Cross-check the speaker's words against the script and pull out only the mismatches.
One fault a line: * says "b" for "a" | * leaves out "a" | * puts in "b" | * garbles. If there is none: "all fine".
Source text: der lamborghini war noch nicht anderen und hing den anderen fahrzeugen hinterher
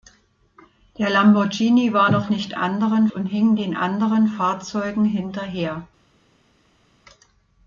all fine